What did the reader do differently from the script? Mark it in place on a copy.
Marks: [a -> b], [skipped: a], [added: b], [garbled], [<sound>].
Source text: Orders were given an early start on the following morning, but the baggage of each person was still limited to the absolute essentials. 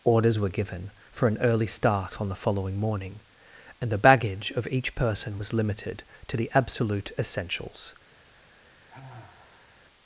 Orders were given [added: for] an early start on the following morning, [but -> and] the baggage of each person was [skipped: still] limited to the absolute essentials. [sigh]